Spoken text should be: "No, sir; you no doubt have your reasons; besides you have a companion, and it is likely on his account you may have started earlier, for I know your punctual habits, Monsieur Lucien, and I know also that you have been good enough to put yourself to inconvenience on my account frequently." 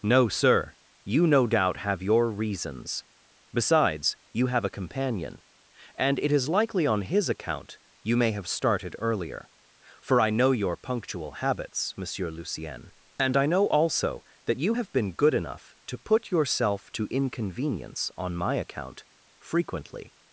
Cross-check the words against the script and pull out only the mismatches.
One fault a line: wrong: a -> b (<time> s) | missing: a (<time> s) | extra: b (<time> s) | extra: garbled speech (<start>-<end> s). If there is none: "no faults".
no faults